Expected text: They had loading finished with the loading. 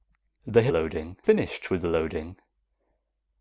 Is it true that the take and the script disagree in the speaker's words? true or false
false